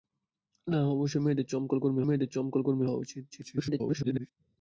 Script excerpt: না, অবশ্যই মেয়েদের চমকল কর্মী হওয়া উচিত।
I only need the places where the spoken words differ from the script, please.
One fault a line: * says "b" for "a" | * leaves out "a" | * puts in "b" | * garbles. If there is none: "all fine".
* puts in "মেয়েদের চমকল কর্মী"
* garbles